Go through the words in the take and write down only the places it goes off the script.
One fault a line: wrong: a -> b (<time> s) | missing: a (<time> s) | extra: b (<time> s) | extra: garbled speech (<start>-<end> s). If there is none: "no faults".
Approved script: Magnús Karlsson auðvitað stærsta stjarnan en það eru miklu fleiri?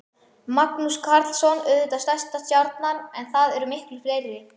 no faults